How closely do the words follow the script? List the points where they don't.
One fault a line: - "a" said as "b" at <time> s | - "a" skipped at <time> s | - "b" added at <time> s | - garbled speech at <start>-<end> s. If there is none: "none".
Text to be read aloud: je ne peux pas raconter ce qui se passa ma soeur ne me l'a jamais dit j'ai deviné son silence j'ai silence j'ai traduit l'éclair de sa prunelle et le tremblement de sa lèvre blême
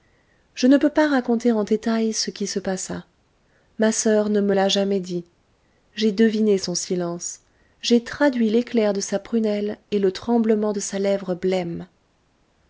- "en détail" added at 1.5 s
- "silence j'ai" skipped at 8.0 s